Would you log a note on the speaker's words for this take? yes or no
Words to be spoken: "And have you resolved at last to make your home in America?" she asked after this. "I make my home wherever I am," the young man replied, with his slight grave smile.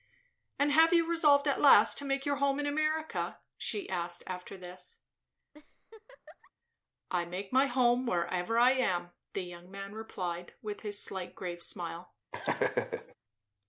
no